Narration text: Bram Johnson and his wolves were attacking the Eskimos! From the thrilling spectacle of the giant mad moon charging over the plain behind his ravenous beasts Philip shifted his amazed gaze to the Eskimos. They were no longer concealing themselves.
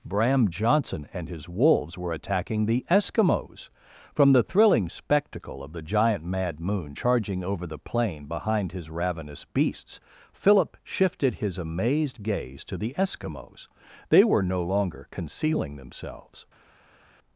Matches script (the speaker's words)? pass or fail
pass